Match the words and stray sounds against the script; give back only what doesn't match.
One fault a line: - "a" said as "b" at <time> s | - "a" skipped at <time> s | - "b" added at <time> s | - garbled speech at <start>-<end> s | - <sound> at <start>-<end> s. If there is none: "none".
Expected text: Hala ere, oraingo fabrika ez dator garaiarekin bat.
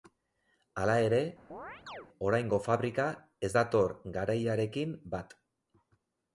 - chirp at 1.5-2.1 s